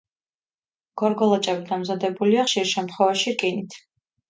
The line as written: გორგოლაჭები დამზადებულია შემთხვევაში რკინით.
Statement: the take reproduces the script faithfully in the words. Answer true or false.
false